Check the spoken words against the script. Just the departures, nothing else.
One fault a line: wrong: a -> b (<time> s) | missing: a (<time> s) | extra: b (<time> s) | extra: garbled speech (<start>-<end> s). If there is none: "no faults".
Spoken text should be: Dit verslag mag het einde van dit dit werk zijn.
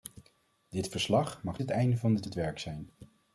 no faults